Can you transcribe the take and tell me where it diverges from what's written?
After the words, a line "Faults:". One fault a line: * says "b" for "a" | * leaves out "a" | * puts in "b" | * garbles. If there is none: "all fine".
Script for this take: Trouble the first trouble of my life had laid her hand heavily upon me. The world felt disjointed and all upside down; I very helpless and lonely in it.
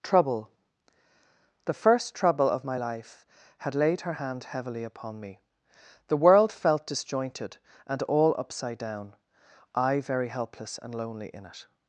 Trouble the first trouble of my life had laid her hand heavily upon me. The world felt disjointed and all upside down; I very helpless and lonely in it.
Faults:
all fine